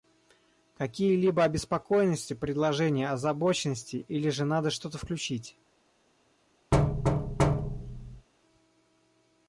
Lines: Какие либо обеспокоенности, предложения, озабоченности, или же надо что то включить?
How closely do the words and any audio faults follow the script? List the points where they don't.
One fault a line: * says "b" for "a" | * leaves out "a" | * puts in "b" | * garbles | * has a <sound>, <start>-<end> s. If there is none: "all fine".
* has a thud, 6.7-8.3 s